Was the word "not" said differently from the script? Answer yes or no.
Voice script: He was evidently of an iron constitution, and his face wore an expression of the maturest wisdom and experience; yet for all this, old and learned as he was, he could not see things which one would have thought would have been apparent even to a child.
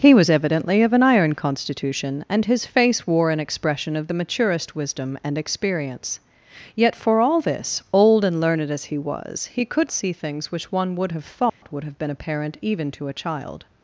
yes